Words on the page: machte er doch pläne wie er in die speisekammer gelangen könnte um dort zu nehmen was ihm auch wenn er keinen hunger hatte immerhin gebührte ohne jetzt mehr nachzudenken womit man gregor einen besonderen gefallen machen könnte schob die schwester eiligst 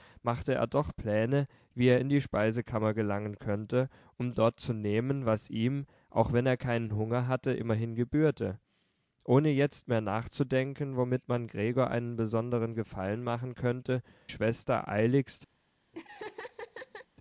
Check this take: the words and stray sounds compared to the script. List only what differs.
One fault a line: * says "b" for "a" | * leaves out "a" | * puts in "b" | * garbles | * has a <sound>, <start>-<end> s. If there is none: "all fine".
* leaves out "schob die"
* has a laugh, 15.9-17.1 s